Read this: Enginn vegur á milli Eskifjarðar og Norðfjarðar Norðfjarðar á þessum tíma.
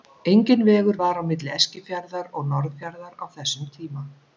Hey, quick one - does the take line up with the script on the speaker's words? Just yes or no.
no